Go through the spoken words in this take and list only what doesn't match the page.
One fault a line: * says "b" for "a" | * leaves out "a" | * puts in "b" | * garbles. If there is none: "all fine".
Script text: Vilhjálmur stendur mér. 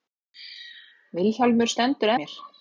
all fine